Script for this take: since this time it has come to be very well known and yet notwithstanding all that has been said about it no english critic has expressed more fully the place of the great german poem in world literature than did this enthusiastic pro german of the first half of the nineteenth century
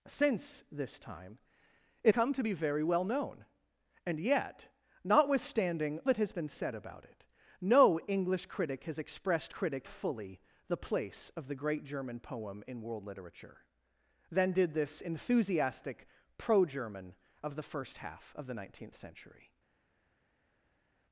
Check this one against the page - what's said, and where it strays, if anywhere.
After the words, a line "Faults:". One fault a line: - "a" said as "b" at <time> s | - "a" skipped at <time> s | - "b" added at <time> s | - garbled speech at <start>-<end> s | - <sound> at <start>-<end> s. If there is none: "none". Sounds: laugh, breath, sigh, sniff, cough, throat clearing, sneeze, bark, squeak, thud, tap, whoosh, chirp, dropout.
since this time it come to be very well known and yet notwithstanding that has been said about it no english critic has expressed critic fully the place of the great german poem in world literature than did this enthusiastic pro german of the first half of the nineteenth century
Faults:
- "has" skipped at 2.1 s
- "all" skipped at 6.0 s
- "more" said as "critic" at 9.5 s